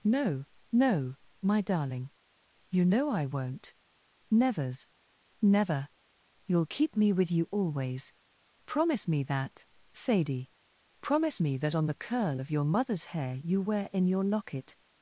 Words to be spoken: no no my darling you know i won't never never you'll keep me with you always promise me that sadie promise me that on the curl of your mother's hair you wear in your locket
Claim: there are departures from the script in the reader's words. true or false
true